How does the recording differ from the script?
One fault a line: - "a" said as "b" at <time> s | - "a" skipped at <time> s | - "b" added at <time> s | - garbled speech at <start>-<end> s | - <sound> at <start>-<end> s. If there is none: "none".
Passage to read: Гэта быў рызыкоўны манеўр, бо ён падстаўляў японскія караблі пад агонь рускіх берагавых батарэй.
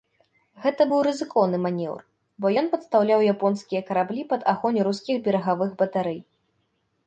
none